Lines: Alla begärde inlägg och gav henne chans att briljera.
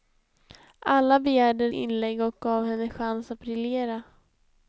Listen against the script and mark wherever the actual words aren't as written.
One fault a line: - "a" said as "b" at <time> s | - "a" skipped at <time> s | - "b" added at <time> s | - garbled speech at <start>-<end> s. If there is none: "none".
none